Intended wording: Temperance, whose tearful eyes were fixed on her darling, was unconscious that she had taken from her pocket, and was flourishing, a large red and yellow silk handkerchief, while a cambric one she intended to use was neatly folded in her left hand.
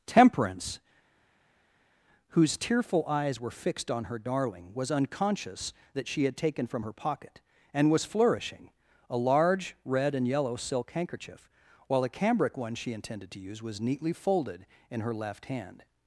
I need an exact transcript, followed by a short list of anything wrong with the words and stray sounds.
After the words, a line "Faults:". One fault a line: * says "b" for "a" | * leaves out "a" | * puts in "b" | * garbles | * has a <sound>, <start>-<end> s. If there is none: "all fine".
Temperance, whose tearful eyes were fixed on her darling, was unconscious that she had taken from her pocket, and was flourishing, a large red and yellow silk handkerchief, while a cambric one she intended to use was neatly folded in her left hand.
Faults:
all fine